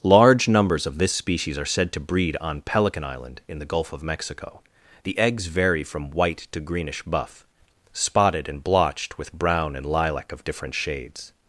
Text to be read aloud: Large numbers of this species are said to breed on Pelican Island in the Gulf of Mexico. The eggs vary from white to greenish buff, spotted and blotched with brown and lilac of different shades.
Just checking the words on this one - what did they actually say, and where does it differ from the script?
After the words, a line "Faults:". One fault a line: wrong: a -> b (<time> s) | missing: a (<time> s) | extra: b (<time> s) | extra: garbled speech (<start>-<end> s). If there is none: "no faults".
Large numbers of this species are said to breed on Pelican Island in the Gulf of Mexico. The eggs vary from white to greenish buff, spotted and blotched with brown and lilac of different shades.
Faults:
no faults